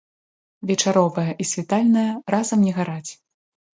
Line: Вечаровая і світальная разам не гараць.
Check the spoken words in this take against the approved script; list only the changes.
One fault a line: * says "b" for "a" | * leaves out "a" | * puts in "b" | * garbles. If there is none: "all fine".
all fine